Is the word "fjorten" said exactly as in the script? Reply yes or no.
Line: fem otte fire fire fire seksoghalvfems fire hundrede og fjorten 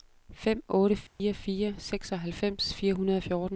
yes